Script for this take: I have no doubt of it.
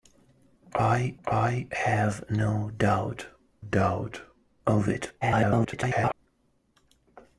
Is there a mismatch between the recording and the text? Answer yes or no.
yes